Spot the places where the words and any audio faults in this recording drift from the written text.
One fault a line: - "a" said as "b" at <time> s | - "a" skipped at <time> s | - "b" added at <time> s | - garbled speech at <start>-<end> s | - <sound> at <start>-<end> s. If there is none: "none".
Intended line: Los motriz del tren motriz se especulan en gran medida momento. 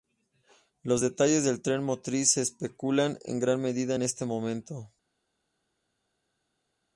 - "motriz" said as "detalles" at 1.0 s
- "en este" added at 3.9 s